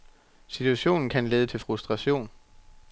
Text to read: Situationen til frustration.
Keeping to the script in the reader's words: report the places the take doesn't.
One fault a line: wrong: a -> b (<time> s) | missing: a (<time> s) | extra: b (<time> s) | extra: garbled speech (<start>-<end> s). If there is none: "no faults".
extra: kan lede (1.1 s)